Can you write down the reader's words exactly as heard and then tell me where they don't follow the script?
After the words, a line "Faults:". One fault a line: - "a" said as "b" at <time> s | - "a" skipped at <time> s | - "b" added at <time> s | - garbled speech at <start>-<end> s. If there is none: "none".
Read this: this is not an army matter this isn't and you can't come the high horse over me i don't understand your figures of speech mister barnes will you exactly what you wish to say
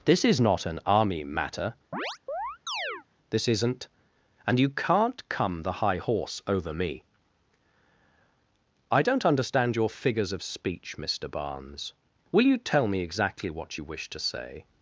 this is not an army matter this isn't and you can't come the high horse over me i don't understand your figures of speech mister barnes will you tell me exactly what you wish to say
Faults:
- "tell me" added at 12.6 s